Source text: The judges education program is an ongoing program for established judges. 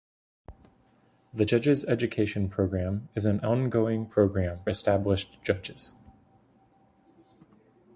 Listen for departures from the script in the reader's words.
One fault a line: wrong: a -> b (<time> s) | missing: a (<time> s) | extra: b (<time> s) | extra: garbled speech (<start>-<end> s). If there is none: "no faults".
missing: for (4.6 s)